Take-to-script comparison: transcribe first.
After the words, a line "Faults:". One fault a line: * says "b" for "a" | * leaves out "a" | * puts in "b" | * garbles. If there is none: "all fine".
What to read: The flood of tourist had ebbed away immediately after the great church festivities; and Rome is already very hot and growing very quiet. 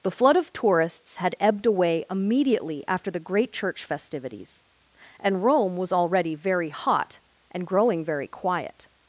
The flood of tourists had ebbed away immediately after the great church festivities; and Rome was already very hot and growing very quiet.
Faults:
* says "tourists" for "tourist"
* says "was" for "is"